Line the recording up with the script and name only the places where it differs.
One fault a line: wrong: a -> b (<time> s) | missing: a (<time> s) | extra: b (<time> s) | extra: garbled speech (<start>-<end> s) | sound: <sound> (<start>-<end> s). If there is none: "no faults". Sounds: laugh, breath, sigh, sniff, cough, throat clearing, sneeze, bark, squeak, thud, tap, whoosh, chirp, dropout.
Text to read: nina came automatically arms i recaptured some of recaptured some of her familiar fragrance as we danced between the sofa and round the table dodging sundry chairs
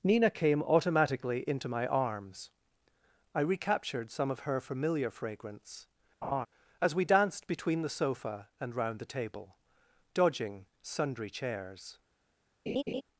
extra: into my (1.5 s)
missing: recaptured some of (4.4 s)
sound: laugh (6.2-6.5 s)
sound: laugh (12.7-13.0 s)